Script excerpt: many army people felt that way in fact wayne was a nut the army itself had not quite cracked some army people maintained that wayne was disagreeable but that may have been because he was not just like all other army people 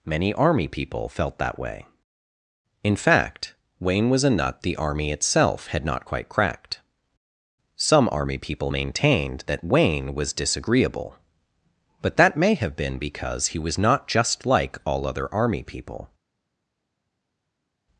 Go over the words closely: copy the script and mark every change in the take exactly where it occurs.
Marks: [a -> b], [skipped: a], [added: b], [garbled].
many army people felt that way in fact wayne was a nut the army itself had not quite cracked some army people maintained that wayne was disagreeable but that may have been because he was not just like all other army people